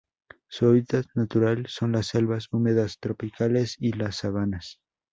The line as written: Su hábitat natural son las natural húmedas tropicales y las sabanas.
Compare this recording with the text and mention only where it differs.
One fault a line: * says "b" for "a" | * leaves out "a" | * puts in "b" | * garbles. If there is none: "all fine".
* says "selvas" for "natural"